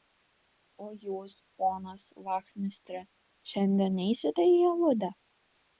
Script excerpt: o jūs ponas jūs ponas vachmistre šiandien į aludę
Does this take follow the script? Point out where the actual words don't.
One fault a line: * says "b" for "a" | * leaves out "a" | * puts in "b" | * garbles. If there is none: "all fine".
* leaves out "jūs ponas"
* puts in "neisite"